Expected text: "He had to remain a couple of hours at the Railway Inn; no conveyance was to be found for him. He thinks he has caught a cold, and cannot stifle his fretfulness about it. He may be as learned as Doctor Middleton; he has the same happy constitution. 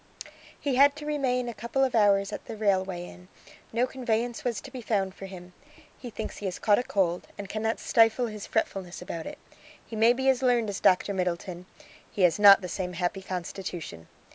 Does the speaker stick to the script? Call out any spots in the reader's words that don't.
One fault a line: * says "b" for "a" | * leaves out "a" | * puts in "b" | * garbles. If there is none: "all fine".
* puts in "not"